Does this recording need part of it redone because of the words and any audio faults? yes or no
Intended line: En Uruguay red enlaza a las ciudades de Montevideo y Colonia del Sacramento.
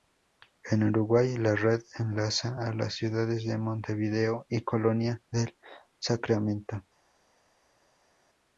yes